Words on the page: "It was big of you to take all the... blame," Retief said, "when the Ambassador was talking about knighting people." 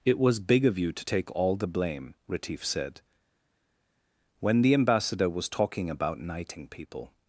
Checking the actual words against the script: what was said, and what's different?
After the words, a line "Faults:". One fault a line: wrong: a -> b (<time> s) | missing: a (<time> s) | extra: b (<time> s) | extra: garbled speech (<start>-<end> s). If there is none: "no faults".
"It was big of you to take all the... blame," Retief said, "when the Ambassador was talking about knighting people."
Faults:
no faults